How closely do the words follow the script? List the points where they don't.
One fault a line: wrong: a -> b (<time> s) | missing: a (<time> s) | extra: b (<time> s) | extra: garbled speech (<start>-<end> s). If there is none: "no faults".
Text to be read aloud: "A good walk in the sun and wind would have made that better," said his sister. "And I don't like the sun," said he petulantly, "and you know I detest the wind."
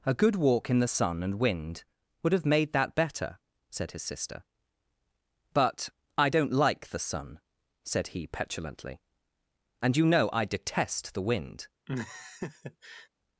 wrong: And -> But (5.5 s)